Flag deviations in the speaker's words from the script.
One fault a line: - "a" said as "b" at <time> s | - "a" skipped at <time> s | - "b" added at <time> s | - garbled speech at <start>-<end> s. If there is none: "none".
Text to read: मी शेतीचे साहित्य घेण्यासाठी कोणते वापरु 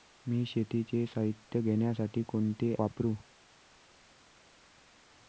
none